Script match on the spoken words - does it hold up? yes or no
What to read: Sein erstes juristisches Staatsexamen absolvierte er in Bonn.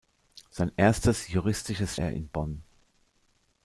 no